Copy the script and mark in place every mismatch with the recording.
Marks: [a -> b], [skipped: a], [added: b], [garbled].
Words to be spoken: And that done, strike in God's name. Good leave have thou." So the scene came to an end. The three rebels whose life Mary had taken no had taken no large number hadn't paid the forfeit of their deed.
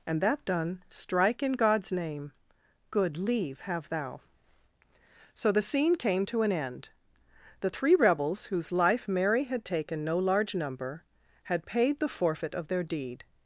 And that done, strike in God's name. Good leave have thou." So the scene came to an end. The three rebels whose life Mary had taken no [skipped: had taken no] large number [hadn't -> had] paid the forfeit of their deed.